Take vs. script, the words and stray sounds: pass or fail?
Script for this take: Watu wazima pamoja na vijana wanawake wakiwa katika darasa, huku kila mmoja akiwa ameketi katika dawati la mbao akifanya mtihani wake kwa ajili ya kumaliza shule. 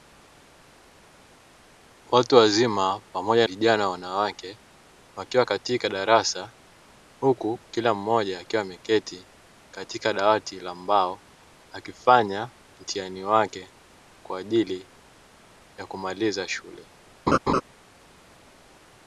fail